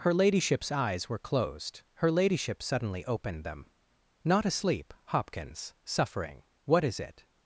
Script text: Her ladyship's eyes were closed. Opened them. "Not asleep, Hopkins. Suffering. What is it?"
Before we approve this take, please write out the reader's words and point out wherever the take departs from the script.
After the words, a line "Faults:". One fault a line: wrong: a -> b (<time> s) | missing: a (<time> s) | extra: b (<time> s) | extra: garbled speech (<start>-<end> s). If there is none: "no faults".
Her ladyship's eyes were closed. Her ladyship suddenly opened them. "Not asleep, Hopkins. Suffering. What is it?"
Faults:
extra: Her ladyship suddenly (2.0 s)